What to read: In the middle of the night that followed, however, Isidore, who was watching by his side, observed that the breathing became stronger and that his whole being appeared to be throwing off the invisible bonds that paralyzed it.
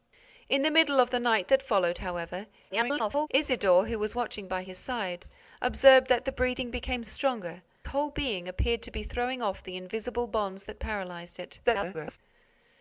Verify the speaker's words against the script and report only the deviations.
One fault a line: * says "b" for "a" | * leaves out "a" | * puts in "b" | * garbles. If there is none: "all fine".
* garbles
* leaves out "and that his"
* garbles